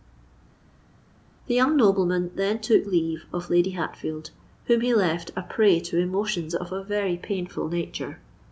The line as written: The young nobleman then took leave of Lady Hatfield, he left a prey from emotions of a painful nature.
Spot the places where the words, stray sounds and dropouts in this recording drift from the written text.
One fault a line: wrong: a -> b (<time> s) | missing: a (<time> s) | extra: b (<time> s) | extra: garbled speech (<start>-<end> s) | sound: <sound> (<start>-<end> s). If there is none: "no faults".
extra: whom (4.6 s)
wrong: from -> to (5.8 s)
extra: very (6.8 s)